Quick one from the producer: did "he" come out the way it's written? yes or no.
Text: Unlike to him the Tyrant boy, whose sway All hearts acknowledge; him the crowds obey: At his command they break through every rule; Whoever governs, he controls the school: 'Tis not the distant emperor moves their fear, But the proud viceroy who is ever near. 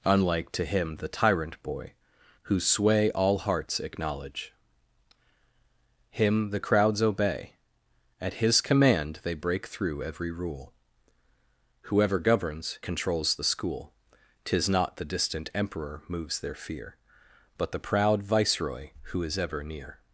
no